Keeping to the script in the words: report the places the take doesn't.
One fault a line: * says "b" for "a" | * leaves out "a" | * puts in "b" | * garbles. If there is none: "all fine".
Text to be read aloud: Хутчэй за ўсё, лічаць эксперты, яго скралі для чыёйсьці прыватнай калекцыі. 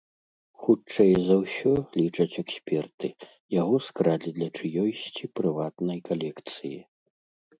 all fine